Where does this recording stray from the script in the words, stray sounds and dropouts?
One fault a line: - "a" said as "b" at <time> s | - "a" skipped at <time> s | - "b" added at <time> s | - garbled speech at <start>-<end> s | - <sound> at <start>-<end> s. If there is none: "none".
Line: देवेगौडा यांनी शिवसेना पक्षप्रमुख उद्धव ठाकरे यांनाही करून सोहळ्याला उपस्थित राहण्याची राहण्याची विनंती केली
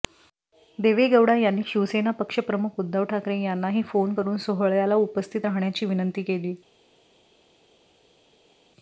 - "फोन" added at 3.8 s
- "राहण्याची" skipped at 5.8 s